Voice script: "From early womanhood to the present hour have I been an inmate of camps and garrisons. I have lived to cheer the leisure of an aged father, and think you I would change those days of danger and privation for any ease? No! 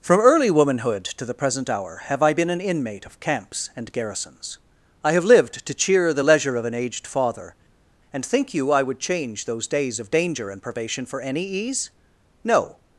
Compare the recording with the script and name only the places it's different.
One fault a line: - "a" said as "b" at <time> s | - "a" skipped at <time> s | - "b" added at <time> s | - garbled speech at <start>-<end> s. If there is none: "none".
none